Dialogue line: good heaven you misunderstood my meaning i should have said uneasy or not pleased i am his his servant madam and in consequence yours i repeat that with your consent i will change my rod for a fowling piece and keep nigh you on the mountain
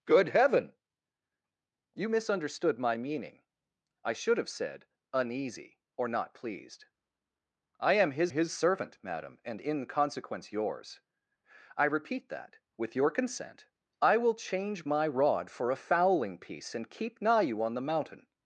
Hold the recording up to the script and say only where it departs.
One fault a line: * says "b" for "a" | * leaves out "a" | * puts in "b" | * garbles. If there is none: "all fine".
all fine